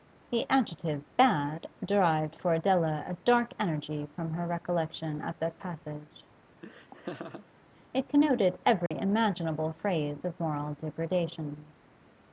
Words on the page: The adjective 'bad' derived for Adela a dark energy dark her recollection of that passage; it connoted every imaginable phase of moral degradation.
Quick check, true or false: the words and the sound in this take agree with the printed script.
false